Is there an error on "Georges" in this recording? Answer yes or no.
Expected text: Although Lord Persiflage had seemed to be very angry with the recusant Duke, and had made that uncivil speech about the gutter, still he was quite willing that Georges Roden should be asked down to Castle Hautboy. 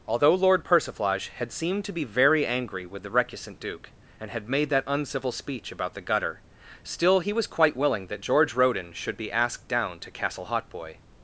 yes